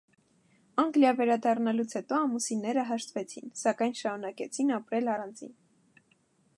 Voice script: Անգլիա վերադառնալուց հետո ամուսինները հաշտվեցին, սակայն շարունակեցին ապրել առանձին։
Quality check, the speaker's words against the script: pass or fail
pass